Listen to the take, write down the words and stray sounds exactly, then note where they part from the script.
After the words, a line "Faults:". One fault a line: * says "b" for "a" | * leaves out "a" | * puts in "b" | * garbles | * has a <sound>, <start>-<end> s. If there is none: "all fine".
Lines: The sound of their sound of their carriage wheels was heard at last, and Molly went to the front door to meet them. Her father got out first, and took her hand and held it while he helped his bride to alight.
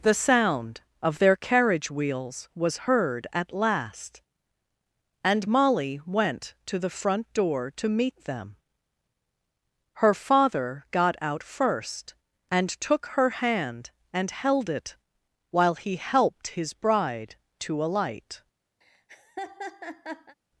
The sound of their carriage wheels was heard at last, and Molly went to the front door to meet them. Her father got out first, and took her hand and held it while he helped his bride to alight.
Faults:
* leaves out "sound of their"
* has a laugh, 18.8-20.4 s